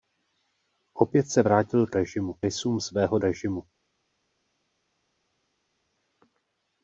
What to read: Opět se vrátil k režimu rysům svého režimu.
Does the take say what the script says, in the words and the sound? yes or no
yes